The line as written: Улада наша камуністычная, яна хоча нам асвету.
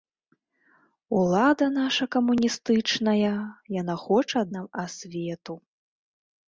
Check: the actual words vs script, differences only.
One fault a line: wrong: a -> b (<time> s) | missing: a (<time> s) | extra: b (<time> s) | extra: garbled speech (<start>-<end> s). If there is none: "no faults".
no faults